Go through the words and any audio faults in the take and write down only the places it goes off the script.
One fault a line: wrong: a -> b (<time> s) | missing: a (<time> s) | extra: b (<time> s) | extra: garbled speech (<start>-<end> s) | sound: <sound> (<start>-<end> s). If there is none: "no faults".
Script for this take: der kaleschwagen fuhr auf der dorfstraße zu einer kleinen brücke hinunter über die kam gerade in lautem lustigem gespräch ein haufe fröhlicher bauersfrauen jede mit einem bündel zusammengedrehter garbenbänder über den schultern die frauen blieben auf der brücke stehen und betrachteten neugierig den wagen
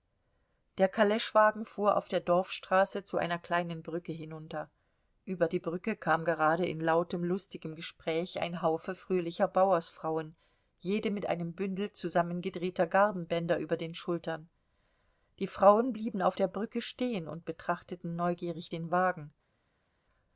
extra: brücke (5.6 s)